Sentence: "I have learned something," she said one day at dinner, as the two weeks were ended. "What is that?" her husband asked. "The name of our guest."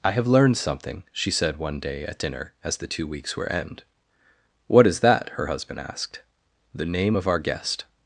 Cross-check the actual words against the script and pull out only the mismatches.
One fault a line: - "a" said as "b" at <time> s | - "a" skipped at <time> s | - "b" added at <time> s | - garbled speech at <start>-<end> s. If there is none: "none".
- "ended" said as "end" at 3.5 s